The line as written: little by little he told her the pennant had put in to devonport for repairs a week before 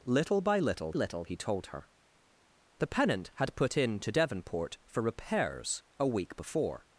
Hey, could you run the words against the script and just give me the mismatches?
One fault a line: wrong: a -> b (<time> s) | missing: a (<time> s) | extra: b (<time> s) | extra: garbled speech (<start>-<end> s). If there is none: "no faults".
extra: little (0.9 s)